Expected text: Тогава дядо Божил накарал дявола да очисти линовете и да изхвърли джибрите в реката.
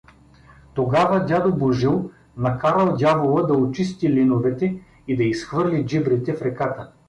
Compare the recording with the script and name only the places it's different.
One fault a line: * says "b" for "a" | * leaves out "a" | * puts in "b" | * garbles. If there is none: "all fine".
all fine